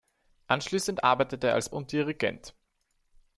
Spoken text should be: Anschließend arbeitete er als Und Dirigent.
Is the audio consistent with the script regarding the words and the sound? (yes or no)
yes